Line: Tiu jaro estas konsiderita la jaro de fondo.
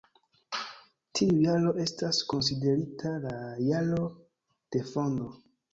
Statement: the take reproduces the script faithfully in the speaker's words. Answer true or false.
true